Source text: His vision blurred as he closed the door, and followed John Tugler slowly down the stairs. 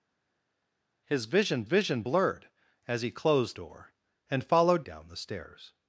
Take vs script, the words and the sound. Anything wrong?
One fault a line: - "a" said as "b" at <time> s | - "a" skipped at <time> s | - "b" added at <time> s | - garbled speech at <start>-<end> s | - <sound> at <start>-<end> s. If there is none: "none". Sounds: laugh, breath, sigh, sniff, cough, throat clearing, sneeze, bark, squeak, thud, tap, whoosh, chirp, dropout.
- "vision" added at 1.6 s
- "the" skipped at 3.6 s
- "John Tugler slowly" skipped at 4.9 s